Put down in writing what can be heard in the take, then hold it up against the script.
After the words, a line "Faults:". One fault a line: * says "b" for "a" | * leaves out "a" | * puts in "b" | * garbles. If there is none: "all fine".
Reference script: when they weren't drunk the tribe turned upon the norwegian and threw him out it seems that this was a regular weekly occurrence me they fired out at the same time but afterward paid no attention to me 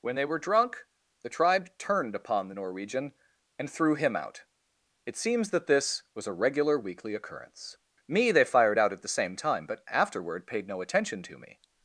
when they were drunk the tribe turned upon the norwegian and threw him out it seems that this was a regular weekly occurrence me they fired out at the same time but afterward paid no attention to me
Faults:
* says "were" for "weren't"